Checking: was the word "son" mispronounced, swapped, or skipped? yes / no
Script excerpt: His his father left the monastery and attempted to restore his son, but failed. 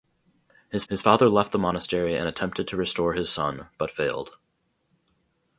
no